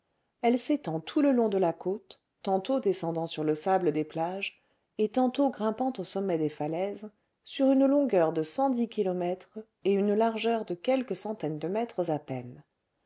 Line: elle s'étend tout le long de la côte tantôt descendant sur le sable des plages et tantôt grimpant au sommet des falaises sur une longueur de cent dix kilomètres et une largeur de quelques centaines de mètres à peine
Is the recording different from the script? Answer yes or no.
no